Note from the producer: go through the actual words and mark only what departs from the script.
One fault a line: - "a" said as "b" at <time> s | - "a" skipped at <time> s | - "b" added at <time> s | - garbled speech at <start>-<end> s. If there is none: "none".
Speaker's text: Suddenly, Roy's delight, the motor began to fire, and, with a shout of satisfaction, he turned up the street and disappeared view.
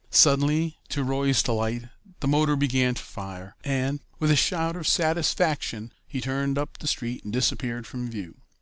- "to" added at 0.9 s
- "from" added at 7.9 s